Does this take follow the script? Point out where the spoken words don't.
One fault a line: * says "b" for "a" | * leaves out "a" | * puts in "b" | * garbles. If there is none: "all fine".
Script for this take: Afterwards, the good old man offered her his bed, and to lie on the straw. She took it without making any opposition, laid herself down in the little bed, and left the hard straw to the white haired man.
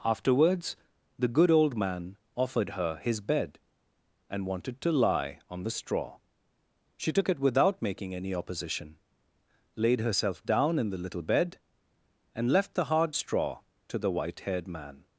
* puts in "wanted"